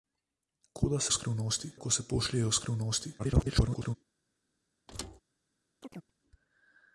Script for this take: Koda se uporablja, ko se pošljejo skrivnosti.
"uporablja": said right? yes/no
no